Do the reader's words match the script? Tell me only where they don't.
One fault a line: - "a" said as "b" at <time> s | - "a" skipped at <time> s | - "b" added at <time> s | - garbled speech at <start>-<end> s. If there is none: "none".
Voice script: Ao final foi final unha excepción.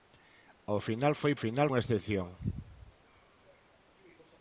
none